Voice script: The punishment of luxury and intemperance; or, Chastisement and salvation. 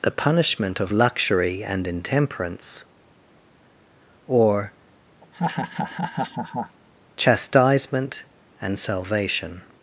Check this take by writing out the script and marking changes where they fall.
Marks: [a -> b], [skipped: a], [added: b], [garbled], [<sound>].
The punishment of luxury and intemperance; or, [laugh] Chastisement and salvation.